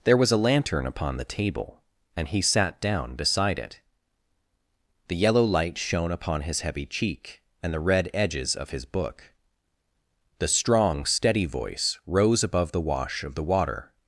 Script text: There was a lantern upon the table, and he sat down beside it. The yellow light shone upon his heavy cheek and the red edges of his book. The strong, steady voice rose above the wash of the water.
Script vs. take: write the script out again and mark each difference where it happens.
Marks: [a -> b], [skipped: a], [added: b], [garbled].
There was a lantern upon the table, and he sat down beside it. The yellow light shone upon his heavy cheek and the red edges of his book. The strong, steady voice rose above the wash of the water.